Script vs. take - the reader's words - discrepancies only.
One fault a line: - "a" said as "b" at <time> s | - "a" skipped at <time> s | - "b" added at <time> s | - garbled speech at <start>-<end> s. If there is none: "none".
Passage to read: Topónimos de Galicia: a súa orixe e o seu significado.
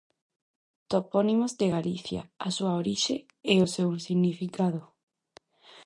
none